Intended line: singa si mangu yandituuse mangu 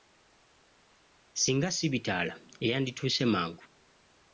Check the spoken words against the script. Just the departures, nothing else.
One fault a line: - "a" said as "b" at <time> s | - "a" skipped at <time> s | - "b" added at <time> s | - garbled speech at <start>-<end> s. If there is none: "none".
- "mangu" said as "bitaala" at 1.9 s